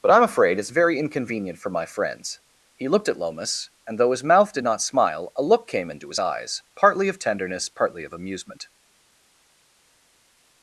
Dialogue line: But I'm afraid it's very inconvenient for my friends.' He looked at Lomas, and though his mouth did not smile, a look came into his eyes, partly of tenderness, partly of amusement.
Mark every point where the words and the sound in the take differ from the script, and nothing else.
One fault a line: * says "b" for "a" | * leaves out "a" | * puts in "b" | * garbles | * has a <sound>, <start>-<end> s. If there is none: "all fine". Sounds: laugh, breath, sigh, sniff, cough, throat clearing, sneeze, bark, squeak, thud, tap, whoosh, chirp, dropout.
all fine